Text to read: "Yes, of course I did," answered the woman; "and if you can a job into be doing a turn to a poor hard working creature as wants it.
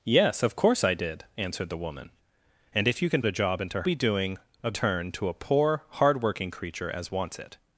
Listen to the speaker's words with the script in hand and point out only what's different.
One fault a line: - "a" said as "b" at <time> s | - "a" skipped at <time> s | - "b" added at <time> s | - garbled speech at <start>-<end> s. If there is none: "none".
none